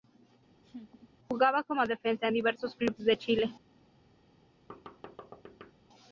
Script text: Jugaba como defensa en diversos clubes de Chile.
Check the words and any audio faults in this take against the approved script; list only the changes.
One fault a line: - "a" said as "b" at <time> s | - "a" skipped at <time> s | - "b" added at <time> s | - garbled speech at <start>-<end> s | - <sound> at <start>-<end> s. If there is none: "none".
- laugh at 0.6-1.1 s
- thud at 4.7-5.7 s